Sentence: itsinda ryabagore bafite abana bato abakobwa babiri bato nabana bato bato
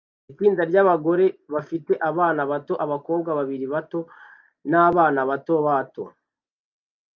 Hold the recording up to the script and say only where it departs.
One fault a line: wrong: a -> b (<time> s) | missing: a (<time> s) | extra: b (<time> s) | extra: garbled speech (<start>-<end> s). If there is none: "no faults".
no faults